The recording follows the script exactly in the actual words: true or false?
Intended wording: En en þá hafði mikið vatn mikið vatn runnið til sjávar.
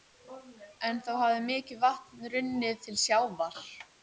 false